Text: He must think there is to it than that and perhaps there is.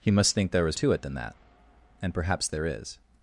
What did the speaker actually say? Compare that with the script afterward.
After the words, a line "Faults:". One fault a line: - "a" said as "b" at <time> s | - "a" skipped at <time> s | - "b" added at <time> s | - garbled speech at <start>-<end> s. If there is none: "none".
He must think there is to it than that and perhaps there is.
Faults:
none